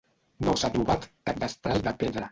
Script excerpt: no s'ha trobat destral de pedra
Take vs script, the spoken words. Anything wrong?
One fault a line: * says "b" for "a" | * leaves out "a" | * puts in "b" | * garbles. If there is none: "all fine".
* puts in "cap"